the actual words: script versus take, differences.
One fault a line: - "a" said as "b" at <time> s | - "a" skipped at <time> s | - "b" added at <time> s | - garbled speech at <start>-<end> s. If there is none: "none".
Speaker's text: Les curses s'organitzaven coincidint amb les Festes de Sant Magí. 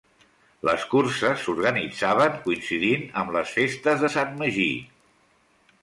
none